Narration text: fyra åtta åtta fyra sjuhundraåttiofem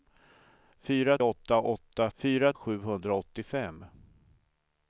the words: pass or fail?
pass